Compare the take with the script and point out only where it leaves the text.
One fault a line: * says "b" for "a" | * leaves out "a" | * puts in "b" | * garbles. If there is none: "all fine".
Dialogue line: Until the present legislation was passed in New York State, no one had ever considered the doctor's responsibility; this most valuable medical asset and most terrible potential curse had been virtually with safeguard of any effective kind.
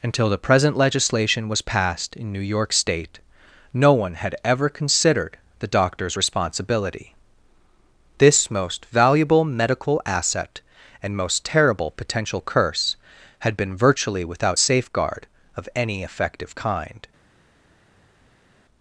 * says "without" for "with"